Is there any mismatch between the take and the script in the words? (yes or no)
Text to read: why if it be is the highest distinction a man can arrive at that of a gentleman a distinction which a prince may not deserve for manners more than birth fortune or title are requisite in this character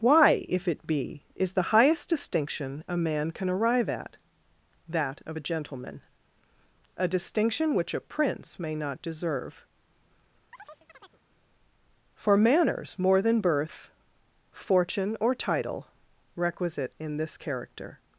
yes